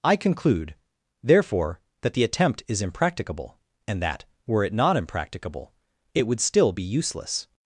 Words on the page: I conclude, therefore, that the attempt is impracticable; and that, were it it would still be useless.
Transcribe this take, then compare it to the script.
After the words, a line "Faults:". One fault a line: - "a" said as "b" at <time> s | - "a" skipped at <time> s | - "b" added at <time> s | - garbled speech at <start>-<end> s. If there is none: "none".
I conclude, therefore, that the attempt is impracticable; and that, were it not impracticable, it would still be useless.
Faults:
- "not impracticable" added at 4.7 s